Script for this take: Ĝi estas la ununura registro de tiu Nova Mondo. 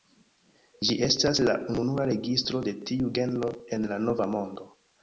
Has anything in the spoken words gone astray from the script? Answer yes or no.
yes